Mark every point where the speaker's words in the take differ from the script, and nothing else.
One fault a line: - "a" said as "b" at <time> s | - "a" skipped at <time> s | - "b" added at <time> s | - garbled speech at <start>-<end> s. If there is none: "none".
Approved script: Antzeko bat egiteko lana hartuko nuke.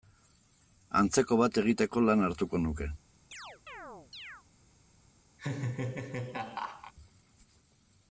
none